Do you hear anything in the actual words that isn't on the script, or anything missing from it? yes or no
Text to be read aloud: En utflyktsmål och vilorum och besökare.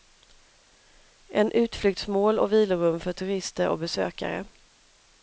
yes